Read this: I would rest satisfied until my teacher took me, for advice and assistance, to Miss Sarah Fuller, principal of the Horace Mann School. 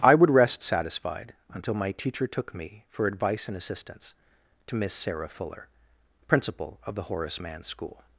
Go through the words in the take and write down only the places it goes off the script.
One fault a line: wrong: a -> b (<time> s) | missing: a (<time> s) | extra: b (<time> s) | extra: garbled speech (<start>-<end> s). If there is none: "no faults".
no faults